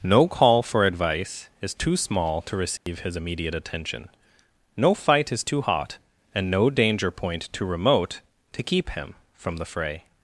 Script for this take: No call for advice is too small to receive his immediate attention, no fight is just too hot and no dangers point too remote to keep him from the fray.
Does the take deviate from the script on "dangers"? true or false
true